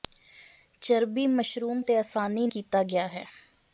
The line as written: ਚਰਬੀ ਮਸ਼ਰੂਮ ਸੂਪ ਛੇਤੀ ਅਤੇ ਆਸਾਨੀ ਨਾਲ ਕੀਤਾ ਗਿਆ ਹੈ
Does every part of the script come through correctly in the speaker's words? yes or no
no